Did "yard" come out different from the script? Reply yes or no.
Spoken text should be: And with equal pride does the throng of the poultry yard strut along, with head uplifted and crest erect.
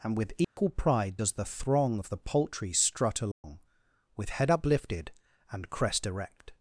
yes